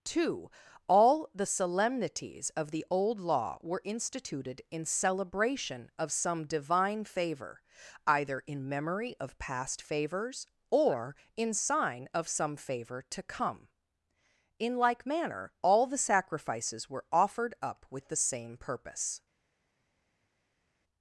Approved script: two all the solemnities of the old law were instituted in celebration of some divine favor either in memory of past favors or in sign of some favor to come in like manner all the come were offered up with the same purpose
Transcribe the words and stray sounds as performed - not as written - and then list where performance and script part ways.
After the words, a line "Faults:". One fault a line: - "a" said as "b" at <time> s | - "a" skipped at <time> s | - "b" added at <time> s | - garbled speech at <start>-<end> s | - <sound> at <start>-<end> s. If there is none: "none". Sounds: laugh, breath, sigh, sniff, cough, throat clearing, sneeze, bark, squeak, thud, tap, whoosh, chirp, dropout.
two all the solemnities of the old law were instituted in celebration of some divine favor either in memory of past favors or in sign of some favor to come in like manner all the sacrifices were offered up with the same purpose
Faults:
- "come" said as "sacrifices" at 16.0 s